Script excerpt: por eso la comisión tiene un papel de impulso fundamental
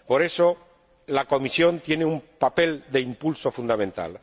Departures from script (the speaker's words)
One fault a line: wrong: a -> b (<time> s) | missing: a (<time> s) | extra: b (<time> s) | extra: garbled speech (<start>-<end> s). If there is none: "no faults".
no faults